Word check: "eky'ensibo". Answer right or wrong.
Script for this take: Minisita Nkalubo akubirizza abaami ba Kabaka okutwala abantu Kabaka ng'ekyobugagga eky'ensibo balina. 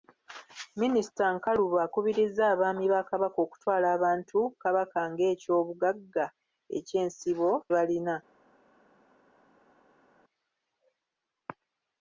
right